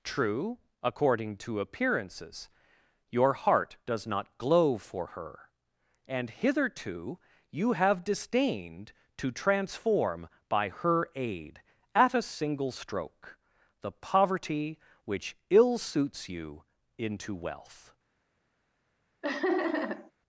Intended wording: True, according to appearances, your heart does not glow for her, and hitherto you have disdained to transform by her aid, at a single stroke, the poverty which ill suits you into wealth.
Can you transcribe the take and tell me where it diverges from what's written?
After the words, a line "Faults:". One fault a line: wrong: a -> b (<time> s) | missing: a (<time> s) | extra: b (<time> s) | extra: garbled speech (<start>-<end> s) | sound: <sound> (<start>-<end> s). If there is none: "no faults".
True, according to appearances, your heart does not glow for her, and hitherto you have disdained to transform by her aid, at a single stroke, the poverty which ill suits you into wealth.
Faults:
sound: laugh (19.2-20.1 s)